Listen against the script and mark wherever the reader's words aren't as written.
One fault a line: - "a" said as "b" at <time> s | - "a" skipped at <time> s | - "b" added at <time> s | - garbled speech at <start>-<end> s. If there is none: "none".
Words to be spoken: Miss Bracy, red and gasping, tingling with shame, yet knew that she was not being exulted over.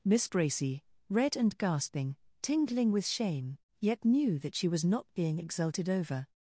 none